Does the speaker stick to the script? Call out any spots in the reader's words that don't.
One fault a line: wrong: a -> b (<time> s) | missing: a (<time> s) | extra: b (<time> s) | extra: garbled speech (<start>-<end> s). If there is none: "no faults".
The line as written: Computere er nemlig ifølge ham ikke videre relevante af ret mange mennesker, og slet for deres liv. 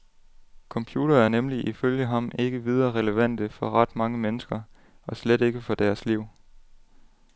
wrong: af -> for (3.5 s)
extra: ikke (5.4 s)